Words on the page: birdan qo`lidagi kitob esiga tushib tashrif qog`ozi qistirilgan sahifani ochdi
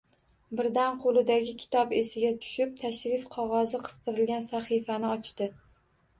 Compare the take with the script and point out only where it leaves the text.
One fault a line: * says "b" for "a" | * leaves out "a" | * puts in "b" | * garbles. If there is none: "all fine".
all fine